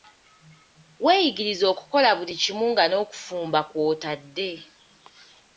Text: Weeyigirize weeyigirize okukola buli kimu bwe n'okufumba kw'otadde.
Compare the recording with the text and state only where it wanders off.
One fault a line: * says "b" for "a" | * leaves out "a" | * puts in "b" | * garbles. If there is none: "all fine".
* leaves out "weeyigirize"
* says "nga" for "bwe"